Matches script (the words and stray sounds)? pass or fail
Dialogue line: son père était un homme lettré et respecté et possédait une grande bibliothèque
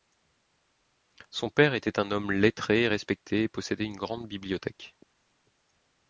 pass